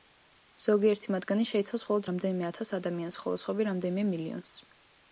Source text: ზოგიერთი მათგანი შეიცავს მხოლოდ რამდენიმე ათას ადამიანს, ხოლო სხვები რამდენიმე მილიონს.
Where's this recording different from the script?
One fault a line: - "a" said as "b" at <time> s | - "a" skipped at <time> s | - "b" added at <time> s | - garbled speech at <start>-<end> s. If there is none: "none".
none